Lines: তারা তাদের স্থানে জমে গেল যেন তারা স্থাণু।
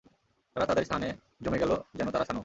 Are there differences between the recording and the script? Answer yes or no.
no